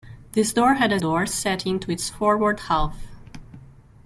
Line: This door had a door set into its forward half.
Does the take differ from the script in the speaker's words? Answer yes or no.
no